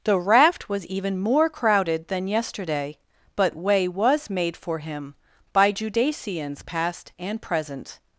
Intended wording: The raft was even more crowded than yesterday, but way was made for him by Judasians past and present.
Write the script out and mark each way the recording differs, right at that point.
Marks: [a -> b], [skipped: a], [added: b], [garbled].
The raft was even more crowded than yesterday, but way was made for him by Judasians past and present.